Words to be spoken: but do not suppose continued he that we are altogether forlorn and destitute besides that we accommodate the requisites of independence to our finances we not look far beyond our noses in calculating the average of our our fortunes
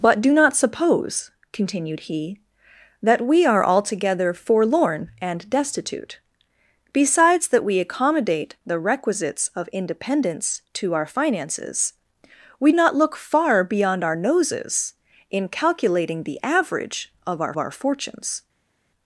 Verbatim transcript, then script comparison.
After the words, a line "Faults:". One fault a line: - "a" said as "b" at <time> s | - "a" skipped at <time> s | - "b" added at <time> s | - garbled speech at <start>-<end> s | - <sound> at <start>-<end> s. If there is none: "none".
but do not suppose continued he that we are altogether forlorn and destitute besides that we accommodate the requisites of independence to our finances we not look far beyond our noses in calculating the average of our our fortunes
Faults:
none